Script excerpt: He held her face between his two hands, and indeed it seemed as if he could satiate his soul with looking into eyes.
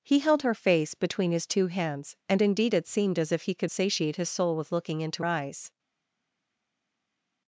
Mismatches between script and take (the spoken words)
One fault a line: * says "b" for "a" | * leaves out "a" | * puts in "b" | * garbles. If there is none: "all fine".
all fine